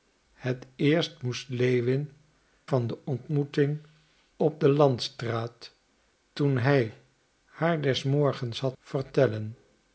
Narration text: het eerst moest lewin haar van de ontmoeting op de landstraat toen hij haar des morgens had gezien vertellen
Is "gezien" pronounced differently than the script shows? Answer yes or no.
yes